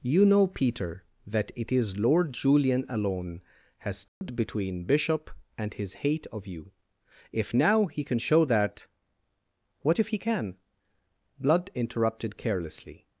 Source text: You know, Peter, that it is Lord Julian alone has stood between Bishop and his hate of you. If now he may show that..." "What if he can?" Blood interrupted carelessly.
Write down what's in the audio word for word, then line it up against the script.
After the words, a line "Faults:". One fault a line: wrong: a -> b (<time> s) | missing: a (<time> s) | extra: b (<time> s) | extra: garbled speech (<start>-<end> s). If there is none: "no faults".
You know, Peter, that it is Lord Julian alone has stood between Bishop and his hate of you. If now he can show that..." "What if he can?" Blood interrupted carelessly.
Faults:
wrong: may -> can (8.0 s)